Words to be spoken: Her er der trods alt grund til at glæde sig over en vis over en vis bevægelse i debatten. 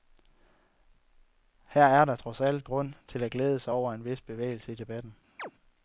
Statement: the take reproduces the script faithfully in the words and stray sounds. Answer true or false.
false